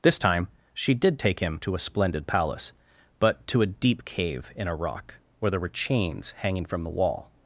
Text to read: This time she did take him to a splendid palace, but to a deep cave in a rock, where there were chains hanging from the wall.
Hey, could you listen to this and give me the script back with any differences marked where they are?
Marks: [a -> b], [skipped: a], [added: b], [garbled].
This time she did take him to a splendid palace, but to a deep cave in a rock, where there were chains hanging from the wall.